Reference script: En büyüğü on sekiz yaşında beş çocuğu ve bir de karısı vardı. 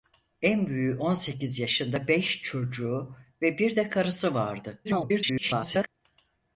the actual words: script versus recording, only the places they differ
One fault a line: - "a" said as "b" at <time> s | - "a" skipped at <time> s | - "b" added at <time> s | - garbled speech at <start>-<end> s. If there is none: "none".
- garbled speech at 4.8-5.9 s